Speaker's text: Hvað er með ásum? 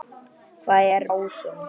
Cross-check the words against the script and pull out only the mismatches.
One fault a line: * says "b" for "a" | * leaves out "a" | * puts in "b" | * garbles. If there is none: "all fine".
* leaves out "með"